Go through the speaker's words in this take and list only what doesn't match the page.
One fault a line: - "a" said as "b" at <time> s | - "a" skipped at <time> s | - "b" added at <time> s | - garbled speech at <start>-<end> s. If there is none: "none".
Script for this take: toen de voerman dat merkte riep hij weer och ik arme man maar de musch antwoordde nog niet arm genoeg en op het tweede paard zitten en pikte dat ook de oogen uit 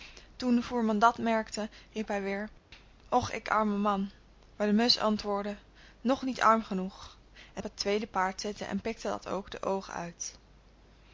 none